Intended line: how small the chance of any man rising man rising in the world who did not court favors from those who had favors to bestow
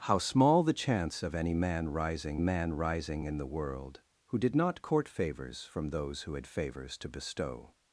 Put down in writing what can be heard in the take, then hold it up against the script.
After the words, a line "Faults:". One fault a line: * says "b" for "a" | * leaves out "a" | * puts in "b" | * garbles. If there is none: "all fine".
how small the chance of any man rising man rising in the world who did not court favors from those who had favors to bestow
Faults:
all fine